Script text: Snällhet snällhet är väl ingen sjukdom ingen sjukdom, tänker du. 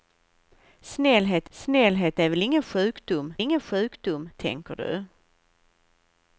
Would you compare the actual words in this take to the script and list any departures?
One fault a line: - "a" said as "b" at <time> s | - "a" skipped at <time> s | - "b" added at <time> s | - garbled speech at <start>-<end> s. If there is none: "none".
none